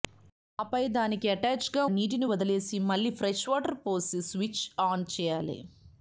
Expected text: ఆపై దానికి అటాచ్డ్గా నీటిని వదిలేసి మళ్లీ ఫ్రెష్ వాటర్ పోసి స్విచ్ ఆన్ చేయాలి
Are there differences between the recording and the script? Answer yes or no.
no